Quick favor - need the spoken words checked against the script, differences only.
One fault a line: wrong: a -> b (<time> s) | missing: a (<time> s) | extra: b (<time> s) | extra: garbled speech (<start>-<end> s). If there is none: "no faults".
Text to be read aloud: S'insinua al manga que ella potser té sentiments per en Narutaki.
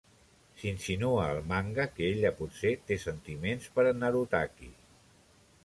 no faults